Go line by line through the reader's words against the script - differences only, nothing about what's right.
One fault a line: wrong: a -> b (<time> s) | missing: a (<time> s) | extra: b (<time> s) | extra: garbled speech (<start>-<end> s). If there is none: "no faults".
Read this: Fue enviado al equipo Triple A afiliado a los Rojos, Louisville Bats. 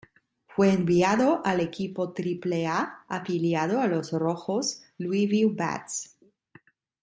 no faults